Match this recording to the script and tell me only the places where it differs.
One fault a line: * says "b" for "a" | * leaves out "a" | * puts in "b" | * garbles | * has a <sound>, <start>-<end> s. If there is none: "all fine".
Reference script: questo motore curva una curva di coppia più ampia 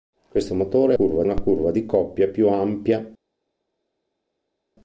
all fine